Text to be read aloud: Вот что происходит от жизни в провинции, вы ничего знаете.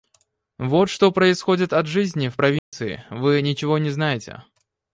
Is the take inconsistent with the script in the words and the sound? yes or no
yes